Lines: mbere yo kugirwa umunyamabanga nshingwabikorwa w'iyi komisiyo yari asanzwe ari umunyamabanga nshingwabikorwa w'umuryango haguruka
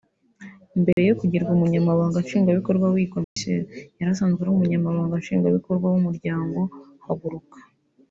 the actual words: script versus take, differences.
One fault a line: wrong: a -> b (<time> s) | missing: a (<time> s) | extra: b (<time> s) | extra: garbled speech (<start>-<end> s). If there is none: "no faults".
no faults